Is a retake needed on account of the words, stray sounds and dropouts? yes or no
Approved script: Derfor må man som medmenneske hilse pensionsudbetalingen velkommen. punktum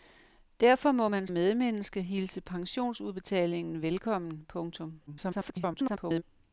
yes